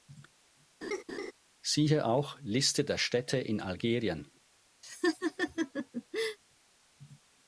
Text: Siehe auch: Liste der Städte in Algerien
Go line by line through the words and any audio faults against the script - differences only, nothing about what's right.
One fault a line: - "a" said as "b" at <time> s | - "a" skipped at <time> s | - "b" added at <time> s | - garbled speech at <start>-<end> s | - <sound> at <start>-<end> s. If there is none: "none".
- laugh at 0.8-1.3 s
- laugh at 4.8-6.4 s